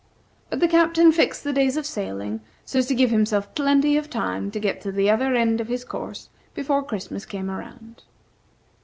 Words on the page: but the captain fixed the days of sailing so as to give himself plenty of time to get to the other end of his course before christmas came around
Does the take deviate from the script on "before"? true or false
false